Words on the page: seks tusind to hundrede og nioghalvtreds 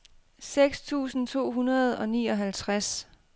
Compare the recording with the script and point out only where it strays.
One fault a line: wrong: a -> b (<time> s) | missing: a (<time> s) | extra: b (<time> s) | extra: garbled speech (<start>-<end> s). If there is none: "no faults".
no faults